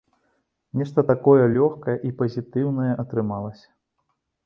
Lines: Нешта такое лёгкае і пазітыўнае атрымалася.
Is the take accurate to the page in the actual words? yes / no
yes